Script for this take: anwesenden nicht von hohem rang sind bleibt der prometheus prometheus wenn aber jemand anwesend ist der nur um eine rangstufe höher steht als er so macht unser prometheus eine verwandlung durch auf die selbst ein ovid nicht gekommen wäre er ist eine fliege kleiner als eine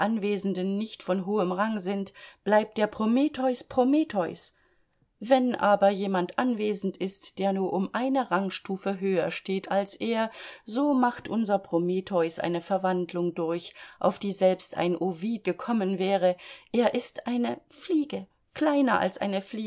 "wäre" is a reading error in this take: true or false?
false